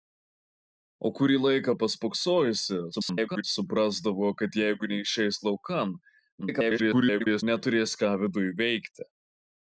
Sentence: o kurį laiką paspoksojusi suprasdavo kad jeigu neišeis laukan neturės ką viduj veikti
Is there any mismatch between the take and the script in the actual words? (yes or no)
yes